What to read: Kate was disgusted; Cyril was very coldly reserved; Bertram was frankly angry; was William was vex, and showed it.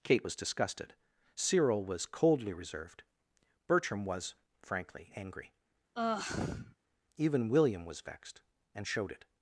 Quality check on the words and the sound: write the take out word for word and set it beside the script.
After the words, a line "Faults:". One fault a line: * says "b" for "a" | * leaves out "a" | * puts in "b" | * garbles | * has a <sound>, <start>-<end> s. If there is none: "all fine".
Kate was disgusted; Cyril was coldly reserved; Bertram was frankly angry; even William was vexed, and showed it.
Faults:
* leaves out "very"
* has a sigh, 6.0-6.8 s
* says "even" for "was"
* says "vexed" for "vex"